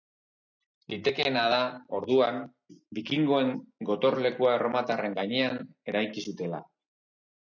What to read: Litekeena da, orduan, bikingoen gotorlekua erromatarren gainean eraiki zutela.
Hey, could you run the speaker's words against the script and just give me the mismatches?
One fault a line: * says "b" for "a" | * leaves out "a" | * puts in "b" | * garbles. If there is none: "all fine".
all fine